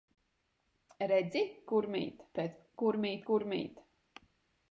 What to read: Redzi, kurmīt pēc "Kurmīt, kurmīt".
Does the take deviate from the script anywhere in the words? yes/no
no